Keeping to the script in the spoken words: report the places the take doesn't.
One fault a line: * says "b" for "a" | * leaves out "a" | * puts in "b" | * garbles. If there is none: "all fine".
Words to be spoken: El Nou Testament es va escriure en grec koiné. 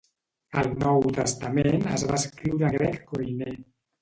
* leaves out "en"